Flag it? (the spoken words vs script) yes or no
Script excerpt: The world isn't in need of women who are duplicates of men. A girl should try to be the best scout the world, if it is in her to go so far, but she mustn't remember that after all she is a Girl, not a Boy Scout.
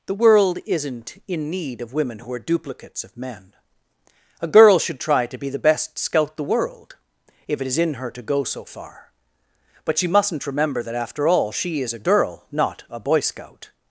no